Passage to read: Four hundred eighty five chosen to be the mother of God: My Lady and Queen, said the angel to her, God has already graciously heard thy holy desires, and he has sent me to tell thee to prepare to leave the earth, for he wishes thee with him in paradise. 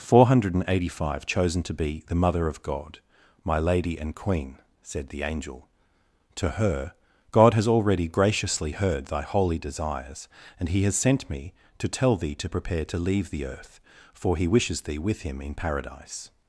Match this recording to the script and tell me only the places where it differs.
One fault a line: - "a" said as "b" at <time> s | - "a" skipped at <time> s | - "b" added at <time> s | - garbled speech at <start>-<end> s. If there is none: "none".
none